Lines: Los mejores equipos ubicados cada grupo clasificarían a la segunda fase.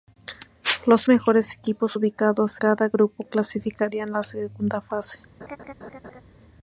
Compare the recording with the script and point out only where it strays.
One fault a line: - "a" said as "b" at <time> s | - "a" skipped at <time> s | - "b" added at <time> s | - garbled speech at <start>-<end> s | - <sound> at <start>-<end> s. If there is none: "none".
- laugh at 5.4-6.2 s